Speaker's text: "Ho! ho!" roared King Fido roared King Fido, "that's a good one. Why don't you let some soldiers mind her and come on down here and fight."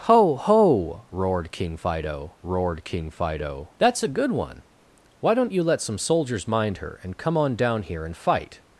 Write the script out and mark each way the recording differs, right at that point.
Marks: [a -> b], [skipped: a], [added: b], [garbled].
"Ho! ho!" roared King Fido roared King Fido, "that's a good one. Why don't you let some soldiers mind her and come on down here and fight."